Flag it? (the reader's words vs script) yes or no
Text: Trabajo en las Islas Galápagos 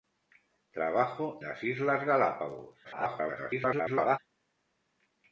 yes